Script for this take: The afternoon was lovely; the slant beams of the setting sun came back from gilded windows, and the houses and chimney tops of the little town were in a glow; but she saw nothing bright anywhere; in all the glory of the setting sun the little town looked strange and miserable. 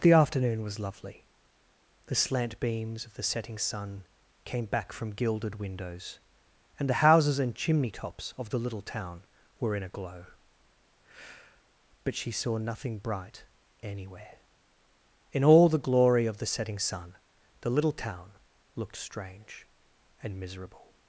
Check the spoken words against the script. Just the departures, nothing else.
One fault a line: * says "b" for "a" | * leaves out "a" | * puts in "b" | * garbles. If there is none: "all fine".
all fine